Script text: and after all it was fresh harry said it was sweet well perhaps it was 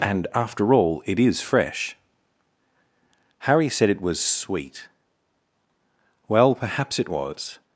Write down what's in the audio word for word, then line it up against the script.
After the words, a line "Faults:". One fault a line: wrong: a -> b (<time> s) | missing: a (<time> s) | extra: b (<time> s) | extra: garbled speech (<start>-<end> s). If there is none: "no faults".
and after all it is fresh harry said it was sweet well perhaps it was
Faults:
wrong: was -> is (1.2 s)